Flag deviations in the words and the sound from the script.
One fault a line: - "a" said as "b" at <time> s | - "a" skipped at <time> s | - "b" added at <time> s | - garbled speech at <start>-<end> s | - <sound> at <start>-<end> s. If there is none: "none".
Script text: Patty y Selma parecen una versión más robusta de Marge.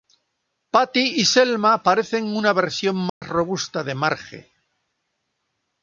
- dropout at 3.1-3.2 s